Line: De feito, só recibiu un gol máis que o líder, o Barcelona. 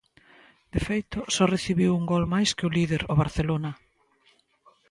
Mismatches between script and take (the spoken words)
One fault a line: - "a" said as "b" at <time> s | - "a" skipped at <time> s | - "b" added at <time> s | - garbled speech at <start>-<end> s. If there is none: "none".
none